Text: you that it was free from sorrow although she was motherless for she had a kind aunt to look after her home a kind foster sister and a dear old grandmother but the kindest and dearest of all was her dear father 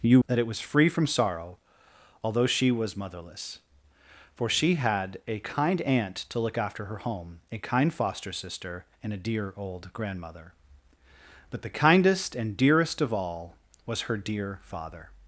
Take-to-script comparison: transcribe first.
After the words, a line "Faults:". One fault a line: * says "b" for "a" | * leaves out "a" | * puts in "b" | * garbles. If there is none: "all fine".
you that it was free from sorrow although she was motherless for she had a kind aunt to look after her home a kind foster sister and a dear old grandmother but the kindest and dearest of all was her dear father
Faults:
all fine